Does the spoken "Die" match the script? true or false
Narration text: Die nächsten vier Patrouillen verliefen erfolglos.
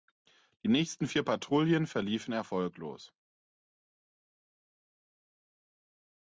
true